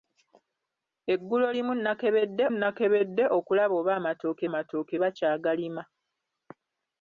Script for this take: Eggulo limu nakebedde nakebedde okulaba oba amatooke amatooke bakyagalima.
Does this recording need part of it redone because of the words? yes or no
no